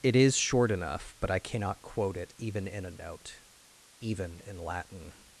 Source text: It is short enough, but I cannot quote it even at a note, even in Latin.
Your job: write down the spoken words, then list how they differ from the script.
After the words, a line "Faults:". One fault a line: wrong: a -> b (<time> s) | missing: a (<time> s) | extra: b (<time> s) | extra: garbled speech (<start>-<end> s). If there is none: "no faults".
It is short enough, but I cannot quote it even in a note, even in Latin.
Faults:
wrong: at -> in (2.7 s)